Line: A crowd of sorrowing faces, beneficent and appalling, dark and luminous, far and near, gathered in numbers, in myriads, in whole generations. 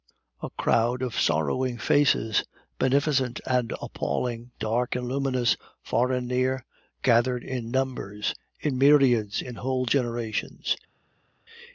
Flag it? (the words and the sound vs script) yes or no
no